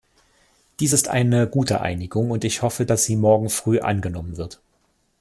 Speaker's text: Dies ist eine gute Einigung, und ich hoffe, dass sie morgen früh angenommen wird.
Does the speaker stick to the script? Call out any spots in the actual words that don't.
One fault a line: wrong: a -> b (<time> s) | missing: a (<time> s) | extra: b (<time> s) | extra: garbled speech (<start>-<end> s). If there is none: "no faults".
no faults